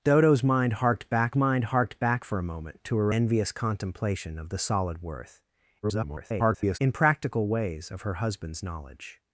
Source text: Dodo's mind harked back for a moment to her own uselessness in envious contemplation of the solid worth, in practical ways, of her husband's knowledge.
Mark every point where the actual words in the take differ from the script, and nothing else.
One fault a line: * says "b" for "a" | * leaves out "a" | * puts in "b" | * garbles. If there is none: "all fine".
* puts in "mind harked back"
* leaves out "own uselessness in"
* garbles